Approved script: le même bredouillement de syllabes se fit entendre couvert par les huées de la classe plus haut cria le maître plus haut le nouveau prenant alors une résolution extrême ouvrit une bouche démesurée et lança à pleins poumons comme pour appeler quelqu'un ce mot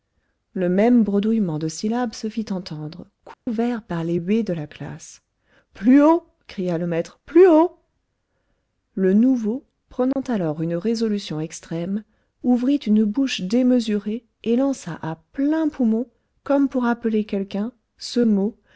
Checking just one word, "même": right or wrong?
right